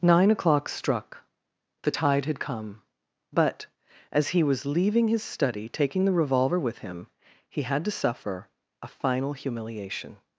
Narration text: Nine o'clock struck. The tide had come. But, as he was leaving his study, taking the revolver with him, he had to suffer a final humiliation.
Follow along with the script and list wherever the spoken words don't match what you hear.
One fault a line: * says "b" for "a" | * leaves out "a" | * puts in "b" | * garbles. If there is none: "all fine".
all fine